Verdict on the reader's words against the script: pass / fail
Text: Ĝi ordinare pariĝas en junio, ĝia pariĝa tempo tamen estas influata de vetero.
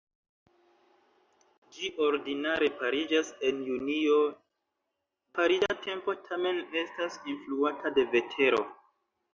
fail